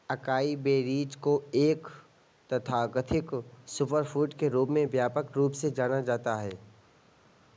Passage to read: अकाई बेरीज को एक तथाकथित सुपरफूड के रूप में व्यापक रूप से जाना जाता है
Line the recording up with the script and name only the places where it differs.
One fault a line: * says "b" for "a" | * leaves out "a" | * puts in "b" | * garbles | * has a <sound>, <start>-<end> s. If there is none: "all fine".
all fine